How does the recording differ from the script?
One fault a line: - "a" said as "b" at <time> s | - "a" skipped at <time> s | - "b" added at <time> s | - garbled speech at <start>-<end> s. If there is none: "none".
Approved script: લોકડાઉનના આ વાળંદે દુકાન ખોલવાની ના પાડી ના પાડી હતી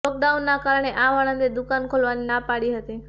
- "કારણે" added at 0.6 s
- "ના પાડી" skipped at 2.7 s